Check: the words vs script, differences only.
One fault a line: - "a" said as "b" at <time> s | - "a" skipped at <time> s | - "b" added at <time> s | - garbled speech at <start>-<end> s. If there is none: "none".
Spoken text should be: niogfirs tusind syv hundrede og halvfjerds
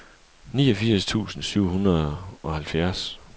none